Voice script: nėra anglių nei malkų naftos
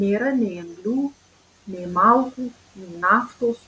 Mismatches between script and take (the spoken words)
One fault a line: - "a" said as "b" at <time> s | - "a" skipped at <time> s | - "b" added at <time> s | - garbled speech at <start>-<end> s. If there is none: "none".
- "nei" added at 0.4 s
- "nei" added at 2.8 s